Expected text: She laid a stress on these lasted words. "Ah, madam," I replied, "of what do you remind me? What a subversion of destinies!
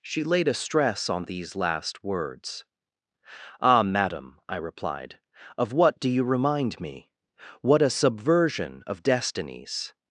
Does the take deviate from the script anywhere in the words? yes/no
yes